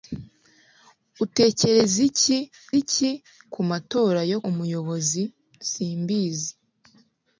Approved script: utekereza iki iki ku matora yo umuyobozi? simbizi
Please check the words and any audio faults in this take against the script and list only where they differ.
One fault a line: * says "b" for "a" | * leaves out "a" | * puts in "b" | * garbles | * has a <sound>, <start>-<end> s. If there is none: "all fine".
all fine